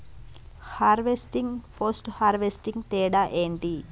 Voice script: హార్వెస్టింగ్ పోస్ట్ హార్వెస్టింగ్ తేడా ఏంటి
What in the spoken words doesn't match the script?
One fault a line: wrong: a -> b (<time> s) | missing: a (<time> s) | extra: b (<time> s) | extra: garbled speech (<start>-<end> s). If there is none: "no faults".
no faults